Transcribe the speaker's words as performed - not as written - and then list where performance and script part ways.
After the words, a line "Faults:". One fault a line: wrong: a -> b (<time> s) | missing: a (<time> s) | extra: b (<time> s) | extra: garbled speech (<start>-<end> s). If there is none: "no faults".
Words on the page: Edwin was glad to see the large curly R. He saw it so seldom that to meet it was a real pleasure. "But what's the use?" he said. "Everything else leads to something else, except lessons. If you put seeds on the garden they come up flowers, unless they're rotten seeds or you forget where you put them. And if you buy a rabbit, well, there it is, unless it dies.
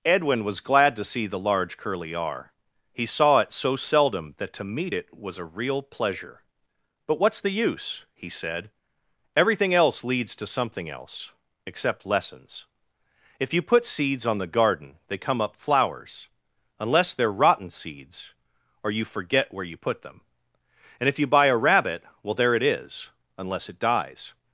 Edwin was glad to see the large curly R. He saw it so seldom that to meet it was a real pleasure. "But what's the use?" he said. "Everything else leads to something else, except lessons. If you put seeds on the garden they come up flowers, unless they're rotten seeds or you forget where you put them. And if you buy a rabbit, well, there it is, unless it dies.
Faults:
no faults